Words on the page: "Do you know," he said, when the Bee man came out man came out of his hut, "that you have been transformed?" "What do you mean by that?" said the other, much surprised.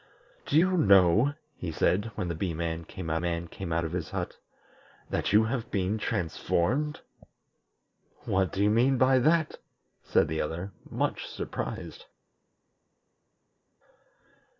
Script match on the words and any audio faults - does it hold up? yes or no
yes